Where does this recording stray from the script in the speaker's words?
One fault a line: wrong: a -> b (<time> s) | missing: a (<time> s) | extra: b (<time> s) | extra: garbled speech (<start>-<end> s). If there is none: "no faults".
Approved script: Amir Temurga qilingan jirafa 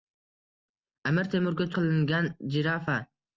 no faults